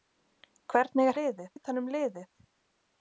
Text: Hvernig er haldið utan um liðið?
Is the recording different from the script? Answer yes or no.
yes